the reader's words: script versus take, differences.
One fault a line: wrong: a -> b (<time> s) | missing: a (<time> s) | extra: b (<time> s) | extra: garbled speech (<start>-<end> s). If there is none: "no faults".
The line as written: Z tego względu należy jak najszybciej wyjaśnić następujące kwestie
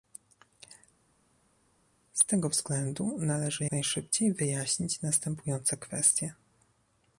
missing: jak (3.6 s)